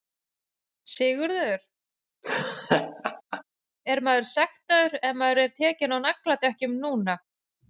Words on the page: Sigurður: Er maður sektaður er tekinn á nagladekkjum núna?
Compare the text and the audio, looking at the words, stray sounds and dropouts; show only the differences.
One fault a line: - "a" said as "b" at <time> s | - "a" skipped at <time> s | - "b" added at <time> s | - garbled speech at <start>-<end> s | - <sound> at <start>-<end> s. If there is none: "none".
- laugh at 2.2-3.4 s
- "ef maður" added at 5.1 s